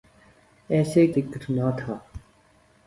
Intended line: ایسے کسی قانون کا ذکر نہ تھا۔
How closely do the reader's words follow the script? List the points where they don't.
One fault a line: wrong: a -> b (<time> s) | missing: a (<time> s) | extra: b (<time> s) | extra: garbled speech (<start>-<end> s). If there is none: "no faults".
missing: کسی قانون کا (1.1 s)